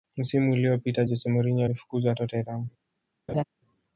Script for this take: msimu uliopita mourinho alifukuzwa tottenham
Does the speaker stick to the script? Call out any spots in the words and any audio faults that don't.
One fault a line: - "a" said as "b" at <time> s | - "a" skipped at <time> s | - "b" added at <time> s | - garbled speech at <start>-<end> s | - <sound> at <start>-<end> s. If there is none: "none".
- "jose" added at 1.0 s
- laugh at 3.3-3.4 s